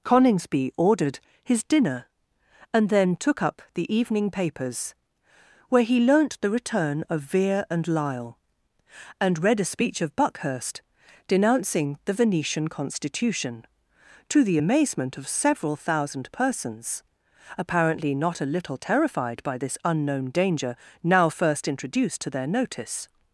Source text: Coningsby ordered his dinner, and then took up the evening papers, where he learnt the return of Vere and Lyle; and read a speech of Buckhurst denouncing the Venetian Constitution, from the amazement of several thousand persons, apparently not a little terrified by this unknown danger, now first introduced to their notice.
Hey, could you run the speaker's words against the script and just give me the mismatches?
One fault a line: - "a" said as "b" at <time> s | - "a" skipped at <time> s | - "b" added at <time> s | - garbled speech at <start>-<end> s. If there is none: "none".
- "from" said as "to" at 14.3 s